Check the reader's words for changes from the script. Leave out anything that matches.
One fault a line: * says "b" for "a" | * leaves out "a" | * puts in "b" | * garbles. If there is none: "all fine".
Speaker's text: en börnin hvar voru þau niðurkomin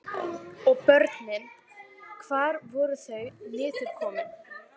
* says "og" for "en"